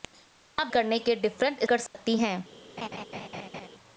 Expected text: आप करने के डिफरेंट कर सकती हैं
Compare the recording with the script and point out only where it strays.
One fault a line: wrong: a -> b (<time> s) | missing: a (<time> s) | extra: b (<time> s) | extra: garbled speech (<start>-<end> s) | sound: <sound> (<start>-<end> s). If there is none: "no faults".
sound: dropout (1.9-1.9 s)
sound: laugh (2.8-3.7 s)